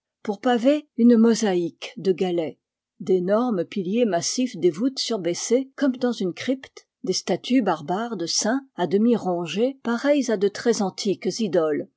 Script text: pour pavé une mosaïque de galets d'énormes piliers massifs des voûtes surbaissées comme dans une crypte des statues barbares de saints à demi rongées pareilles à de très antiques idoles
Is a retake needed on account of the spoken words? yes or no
no